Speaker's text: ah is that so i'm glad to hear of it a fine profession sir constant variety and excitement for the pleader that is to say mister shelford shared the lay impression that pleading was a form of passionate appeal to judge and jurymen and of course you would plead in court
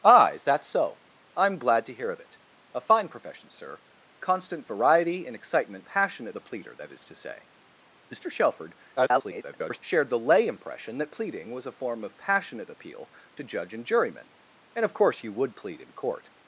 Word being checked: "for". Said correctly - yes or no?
no